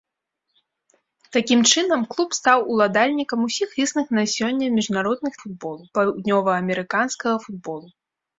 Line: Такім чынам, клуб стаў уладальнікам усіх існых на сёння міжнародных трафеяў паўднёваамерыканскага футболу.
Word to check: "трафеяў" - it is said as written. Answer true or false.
false